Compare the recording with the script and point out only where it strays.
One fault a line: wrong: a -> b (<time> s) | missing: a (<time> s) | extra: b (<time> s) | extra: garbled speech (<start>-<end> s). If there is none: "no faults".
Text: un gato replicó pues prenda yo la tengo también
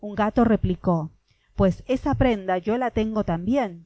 extra: esa (1.9 s)